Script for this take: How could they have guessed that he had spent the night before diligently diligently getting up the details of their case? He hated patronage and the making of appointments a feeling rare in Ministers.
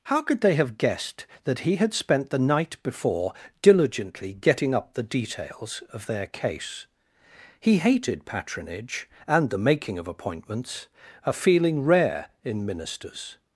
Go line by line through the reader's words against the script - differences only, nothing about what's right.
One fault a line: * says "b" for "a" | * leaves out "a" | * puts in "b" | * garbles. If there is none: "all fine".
* leaves out "diligently"